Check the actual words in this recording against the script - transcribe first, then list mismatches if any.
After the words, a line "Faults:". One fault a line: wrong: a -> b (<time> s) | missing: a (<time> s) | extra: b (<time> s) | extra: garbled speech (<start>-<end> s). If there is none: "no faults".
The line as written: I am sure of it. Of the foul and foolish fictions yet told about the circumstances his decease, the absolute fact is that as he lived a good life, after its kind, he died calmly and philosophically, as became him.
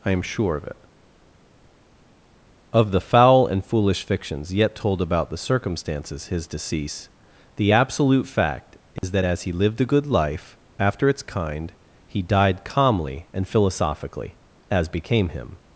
I am sure of it. Of the foul and foolish fictions yet told about the circumstances his decease, the absolute fact is that as he lived a good life, after its kind, he died calmly and philosophically, as became him.
Faults:
no faults